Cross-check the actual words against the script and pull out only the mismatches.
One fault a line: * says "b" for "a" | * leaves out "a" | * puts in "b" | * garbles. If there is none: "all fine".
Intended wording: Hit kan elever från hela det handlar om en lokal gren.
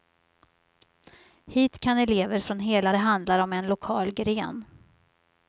all fine